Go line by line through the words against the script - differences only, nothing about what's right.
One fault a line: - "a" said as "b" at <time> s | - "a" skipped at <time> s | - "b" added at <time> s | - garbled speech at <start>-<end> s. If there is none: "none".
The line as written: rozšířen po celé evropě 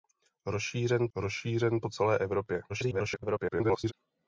- "rozšířen" added at 1.1 s
- garbled speech at 2.7-3.9 s